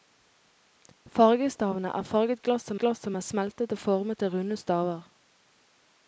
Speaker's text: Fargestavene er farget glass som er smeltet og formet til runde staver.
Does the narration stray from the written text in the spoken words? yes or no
yes